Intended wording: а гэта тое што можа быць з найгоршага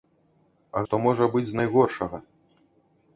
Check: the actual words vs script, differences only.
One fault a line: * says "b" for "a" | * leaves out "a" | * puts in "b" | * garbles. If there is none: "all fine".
* leaves out "гэта тое"